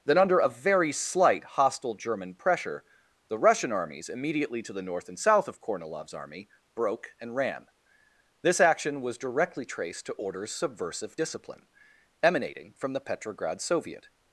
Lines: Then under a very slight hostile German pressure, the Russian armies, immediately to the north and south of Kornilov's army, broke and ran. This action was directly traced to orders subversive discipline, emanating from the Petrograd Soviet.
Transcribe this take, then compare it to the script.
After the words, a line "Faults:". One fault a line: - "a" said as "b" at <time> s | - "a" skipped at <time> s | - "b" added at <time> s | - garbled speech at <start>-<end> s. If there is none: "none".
Then under a very slight hostile German pressure, the Russian armies, immediately to the north and south of Kornilov's army, broke and ran. This action was directly traced to orders subversive discipline, emanating from the Petrograd Soviet.
Faults:
none